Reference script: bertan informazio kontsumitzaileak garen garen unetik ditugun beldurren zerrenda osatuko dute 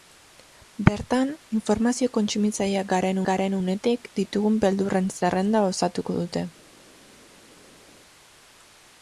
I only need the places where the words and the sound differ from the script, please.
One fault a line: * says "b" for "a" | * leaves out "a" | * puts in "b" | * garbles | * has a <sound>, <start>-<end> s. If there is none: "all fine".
all fine